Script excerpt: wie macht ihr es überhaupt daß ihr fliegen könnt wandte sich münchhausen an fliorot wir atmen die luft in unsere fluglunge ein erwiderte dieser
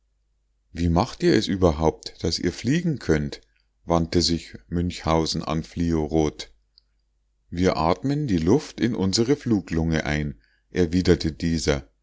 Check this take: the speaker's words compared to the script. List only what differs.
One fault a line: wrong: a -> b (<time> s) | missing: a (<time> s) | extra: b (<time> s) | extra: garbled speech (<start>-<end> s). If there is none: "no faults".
no faults